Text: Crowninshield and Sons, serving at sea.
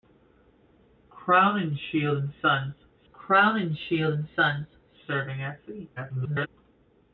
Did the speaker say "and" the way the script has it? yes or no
yes